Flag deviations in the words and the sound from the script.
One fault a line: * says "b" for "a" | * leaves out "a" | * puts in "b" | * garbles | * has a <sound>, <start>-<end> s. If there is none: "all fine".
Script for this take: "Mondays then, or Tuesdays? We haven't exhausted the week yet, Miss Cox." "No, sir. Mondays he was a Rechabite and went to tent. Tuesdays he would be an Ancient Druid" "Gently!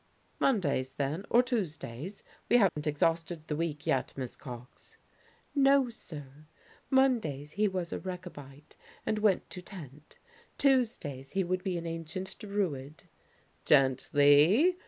* has a dropout, 2.7-2.8 s